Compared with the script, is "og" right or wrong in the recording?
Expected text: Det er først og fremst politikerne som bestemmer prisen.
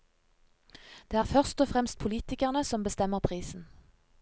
right